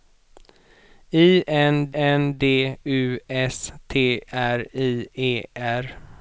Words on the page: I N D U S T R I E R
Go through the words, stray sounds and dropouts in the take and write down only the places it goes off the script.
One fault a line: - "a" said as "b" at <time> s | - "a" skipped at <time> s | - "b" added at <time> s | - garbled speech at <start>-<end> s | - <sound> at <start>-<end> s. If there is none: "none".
- "N" added at 1.9 s